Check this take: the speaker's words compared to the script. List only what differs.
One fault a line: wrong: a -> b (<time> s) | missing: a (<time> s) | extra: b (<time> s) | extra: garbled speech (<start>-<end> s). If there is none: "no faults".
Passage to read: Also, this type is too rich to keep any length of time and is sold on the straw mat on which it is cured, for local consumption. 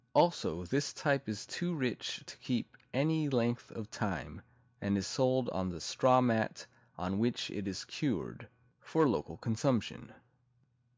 no faults